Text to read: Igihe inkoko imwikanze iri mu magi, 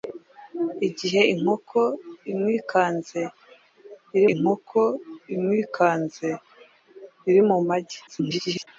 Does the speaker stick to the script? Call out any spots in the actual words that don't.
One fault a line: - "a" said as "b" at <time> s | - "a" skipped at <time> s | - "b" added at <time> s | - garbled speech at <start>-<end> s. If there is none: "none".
- "inkoko imwikanze iri" added at 4.3 s
- garbled speech at 8.1-8.7 s